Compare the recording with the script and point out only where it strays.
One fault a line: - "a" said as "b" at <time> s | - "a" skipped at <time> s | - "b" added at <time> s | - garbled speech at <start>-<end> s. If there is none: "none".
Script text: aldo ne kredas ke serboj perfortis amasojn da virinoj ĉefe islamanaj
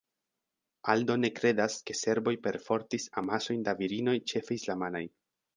none